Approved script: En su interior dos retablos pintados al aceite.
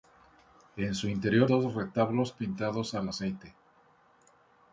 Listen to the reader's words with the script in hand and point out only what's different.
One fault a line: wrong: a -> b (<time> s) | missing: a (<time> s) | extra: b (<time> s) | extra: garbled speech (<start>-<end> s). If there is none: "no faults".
no faults